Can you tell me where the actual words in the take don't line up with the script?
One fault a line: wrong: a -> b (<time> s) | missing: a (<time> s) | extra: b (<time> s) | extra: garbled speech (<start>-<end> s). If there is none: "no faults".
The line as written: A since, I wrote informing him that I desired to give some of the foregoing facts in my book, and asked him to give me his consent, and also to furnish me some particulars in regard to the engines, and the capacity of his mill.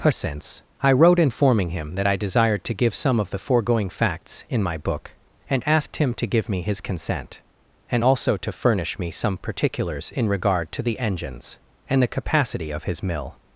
no faults